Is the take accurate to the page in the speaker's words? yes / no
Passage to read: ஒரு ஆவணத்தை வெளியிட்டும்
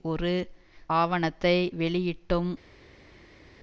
yes